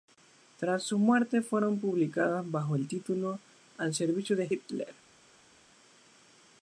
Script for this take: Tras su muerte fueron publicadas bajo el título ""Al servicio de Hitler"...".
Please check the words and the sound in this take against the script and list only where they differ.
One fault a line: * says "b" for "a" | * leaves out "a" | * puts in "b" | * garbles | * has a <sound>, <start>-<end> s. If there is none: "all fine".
all fine